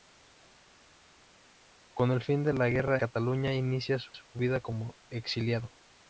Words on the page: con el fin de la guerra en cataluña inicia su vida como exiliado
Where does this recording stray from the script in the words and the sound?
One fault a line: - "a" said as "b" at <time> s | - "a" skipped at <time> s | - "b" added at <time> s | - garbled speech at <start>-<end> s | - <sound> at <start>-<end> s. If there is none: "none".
- "en" skipped at 3.0 s
- "su" added at 4.1 s